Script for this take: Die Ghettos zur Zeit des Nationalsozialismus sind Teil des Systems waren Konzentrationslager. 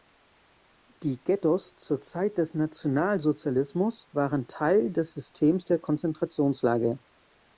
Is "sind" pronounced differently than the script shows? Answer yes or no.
yes